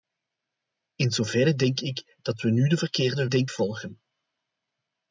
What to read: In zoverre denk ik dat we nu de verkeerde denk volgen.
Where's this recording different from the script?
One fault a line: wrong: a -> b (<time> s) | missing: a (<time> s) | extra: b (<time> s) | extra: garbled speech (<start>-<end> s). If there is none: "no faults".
no faults